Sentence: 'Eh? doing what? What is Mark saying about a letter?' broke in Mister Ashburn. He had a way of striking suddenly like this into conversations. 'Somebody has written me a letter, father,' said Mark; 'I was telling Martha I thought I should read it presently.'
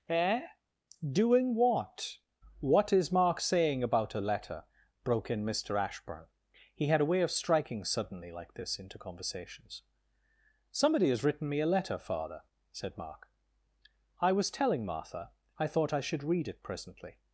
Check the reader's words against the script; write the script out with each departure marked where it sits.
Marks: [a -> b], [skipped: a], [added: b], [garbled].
'Eh? doing what? What is Mark saying about a letter?' broke in Mister Ashburn. He had a way of striking suddenly like this into conversations. 'Somebody has written me a letter, father,' said Mark; 'I was telling Martha I thought I should read it presently.'